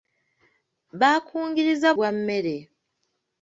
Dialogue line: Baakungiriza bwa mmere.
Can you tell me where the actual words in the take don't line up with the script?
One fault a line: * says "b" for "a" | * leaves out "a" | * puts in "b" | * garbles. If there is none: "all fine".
all fine